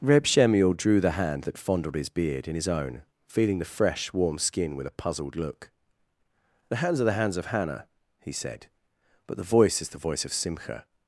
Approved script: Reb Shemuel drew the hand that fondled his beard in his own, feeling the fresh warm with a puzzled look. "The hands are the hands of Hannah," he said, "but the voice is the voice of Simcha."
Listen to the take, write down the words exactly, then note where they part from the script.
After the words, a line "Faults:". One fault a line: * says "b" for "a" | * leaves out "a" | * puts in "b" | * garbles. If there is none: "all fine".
Reb Shemuel drew the hand that fondled his beard in his own, feeling the fresh warm skin with a puzzled look. "The hands are the hands of Hannah," he said, "but the voice is the voice of Simcha."
Faults:
* puts in "skin"